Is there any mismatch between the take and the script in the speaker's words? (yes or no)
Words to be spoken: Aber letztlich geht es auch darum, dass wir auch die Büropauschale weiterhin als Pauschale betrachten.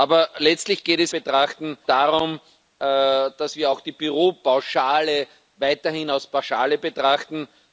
yes